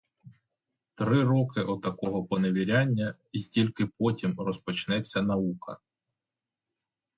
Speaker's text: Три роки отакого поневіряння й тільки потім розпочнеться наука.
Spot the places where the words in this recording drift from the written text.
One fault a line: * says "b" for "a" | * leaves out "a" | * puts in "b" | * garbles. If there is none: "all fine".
all fine